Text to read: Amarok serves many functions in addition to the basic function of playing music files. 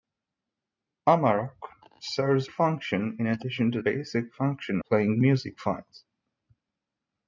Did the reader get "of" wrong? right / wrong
wrong